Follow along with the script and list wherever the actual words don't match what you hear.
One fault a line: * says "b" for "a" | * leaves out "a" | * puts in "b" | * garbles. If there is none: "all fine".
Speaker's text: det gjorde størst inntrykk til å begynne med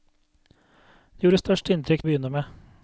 * leaves out "til"